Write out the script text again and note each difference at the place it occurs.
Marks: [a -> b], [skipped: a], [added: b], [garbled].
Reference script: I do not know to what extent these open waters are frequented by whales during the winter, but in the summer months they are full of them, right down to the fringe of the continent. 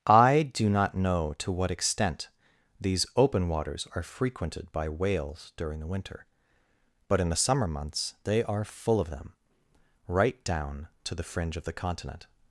I do not know to what extent these open waters are frequented by whales during the winter, but in the summer months they are full of them, right down to the fringe of the continent.